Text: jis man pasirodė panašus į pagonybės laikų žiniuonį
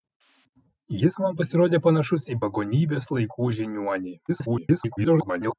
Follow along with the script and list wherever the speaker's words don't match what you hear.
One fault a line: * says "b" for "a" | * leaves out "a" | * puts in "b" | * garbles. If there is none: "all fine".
* garbles